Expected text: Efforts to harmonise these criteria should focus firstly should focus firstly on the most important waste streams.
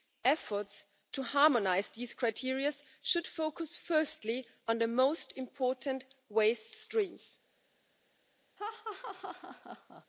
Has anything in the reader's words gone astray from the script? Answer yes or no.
yes